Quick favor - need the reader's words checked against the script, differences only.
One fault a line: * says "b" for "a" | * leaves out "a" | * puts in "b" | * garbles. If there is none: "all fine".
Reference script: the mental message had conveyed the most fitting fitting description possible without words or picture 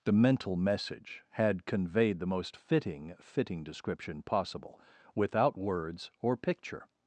all fine